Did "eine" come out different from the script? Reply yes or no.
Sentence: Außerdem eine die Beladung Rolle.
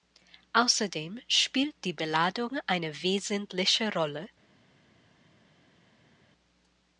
yes